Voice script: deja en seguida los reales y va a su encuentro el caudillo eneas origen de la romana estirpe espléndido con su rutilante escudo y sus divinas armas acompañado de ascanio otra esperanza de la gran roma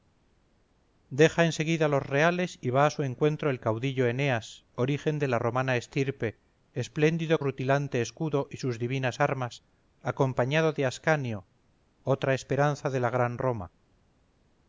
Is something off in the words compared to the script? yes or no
yes